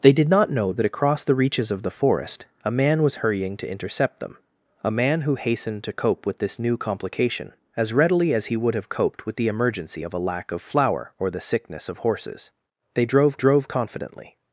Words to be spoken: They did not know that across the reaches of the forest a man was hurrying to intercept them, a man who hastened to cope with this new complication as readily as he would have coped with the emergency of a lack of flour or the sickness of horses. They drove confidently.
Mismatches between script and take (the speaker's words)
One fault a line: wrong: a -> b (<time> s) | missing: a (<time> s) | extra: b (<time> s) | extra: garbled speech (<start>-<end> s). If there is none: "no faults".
extra: drove (13.3 s)